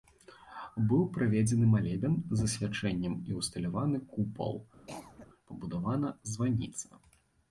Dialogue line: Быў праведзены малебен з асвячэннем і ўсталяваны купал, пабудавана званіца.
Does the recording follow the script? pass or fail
pass